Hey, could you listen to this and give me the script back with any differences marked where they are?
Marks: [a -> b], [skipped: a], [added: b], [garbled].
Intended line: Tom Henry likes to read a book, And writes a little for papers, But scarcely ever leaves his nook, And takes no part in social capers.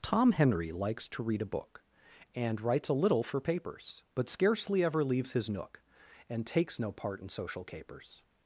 Tom Henry likes to read a book, And writes a little for papers, But scarcely ever leaves his nook, And takes no part in social capers.